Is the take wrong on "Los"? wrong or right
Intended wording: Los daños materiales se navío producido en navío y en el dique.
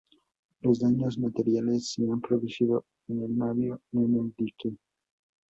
right